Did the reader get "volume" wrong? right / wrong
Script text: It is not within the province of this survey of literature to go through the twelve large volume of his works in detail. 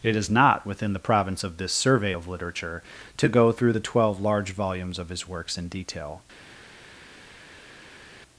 wrong